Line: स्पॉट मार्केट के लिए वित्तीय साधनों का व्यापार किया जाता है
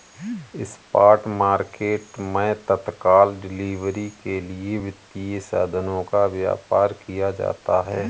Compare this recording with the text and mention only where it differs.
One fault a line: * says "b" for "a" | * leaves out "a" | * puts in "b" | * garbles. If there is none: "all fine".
* puts in "मैं तत्काल डिलीवरी"